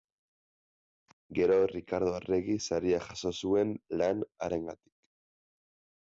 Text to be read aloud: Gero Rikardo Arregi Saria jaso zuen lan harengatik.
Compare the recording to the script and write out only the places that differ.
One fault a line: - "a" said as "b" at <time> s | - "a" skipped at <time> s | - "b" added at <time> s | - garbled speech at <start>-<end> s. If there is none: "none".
none